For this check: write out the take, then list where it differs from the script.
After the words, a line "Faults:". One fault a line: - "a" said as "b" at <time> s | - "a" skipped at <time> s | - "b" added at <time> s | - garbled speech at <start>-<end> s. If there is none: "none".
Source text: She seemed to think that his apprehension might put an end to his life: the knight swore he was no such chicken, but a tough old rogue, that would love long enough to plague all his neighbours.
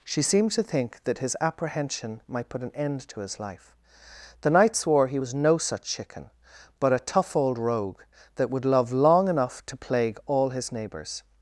She seemed to think that his apprehension might put an end to his life: the knight swore he was no such chicken, but a tough old rogue, that would love long enough to plague all his neighbours.
Faults:
none